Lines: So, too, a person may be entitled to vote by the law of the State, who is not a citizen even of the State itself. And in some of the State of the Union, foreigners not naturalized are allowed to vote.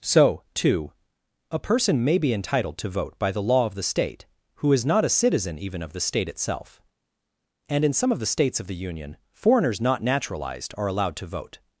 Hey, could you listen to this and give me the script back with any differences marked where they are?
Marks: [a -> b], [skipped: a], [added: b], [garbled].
So, too, a person may be entitled to vote by the law of the State, who is not a citizen even of the State itself. And in some of the [State -> States] of the Union, foreigners not naturalized are allowed to vote.